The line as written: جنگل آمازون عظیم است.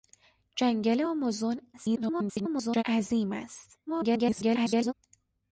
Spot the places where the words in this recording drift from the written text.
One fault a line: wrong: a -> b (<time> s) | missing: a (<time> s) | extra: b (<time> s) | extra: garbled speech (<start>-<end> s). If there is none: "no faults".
extra: garbled speech (1.7-2.8 s)
extra: garbled speech (3.9-4.9 s)